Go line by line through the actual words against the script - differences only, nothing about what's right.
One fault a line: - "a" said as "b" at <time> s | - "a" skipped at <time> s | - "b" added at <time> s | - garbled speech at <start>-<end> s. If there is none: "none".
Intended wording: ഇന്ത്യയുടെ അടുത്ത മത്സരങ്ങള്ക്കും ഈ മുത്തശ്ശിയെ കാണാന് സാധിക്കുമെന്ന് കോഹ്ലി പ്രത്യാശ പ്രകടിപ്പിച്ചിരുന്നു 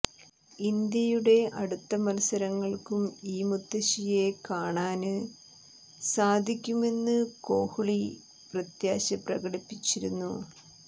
none